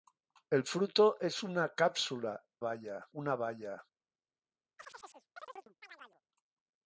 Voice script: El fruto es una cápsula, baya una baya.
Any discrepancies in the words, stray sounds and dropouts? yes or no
yes